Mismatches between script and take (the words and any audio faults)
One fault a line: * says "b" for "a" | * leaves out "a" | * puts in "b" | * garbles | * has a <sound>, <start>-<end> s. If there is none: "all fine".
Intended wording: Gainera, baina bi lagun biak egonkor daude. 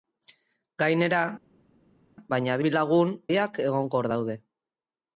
all fine